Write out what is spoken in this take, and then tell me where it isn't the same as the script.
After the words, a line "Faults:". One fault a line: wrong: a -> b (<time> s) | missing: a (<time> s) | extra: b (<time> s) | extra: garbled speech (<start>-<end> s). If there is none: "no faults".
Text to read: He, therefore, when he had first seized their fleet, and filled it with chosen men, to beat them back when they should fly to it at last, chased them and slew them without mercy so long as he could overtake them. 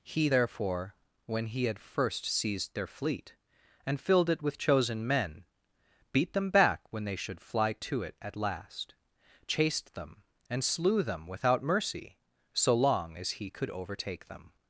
He, therefore, when he had first seized their fleet, and filled it with chosen men, beat them back when they should fly to it at last, chased them and slew them without mercy so long as he could overtake them.
Faults:
missing: to (5.5 s)